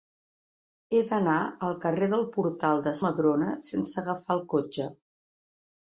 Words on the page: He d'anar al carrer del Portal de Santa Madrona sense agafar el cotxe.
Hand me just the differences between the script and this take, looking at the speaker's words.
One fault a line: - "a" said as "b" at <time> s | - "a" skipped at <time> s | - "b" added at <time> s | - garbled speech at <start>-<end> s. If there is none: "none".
- "Santa" skipped at 3.0 s